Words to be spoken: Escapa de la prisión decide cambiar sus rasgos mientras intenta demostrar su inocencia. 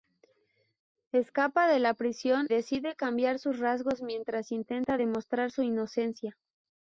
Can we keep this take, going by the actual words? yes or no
yes